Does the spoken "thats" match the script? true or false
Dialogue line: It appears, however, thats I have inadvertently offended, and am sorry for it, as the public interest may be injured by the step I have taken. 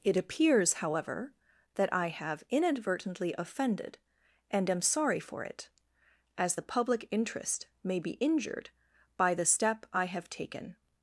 false